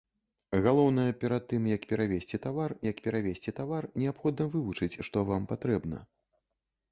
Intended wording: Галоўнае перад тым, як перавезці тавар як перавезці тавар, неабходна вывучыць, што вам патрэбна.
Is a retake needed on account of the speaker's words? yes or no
no